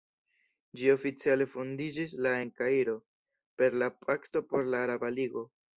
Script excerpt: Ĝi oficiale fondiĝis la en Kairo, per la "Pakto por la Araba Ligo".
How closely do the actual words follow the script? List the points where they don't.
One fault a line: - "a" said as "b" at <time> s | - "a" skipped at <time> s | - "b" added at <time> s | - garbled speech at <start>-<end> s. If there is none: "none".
none